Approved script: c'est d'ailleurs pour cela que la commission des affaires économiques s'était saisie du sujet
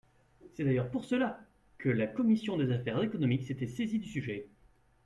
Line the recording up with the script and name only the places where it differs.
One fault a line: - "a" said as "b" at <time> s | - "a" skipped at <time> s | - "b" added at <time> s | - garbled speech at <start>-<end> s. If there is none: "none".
none